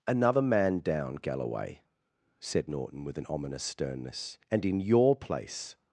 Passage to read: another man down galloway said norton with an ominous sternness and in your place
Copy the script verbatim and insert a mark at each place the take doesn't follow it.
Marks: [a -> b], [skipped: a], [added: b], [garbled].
another man down galloway said norton with an ominous sternness and in your place